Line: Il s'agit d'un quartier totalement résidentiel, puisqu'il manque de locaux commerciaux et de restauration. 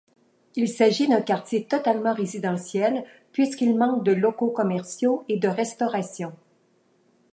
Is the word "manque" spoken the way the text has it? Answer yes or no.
yes